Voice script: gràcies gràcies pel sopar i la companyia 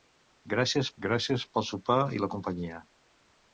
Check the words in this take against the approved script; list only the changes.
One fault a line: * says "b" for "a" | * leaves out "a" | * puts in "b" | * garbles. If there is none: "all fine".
all fine